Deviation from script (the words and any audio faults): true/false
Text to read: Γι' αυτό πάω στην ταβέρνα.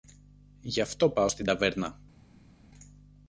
false